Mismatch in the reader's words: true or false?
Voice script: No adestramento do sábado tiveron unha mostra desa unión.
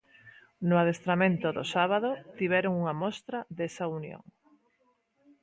false